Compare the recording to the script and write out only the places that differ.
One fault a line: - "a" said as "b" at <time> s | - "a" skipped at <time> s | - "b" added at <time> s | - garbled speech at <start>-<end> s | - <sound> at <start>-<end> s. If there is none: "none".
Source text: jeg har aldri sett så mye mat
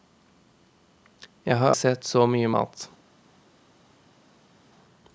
- "aldri" skipped at 1.7 s